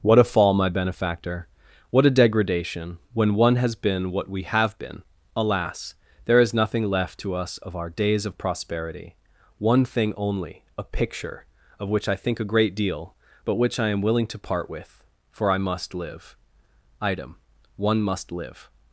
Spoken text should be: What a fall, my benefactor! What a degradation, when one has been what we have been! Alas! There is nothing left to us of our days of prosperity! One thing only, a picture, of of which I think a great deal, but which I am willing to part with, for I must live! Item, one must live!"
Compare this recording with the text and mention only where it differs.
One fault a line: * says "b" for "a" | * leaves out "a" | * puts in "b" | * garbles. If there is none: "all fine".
* leaves out "of"